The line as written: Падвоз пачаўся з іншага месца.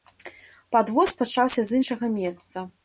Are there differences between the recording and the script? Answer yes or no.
no